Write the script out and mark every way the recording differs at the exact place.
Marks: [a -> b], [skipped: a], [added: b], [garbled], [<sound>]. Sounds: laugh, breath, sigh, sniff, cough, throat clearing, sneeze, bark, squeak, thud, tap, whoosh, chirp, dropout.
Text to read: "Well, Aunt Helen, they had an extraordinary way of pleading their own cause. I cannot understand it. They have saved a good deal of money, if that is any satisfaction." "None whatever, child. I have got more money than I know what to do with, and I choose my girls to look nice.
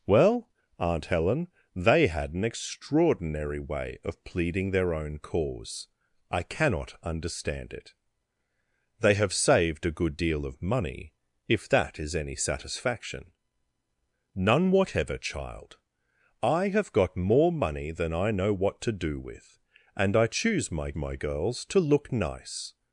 "Well, Aunt Helen, they had an extraordinary way of pleading their own cause. I cannot understand it. They have saved a good deal of money, if that is any satisfaction." "None whatever, child. I have got more money than I know what to do with, and I choose my [added: my] girls to look nice.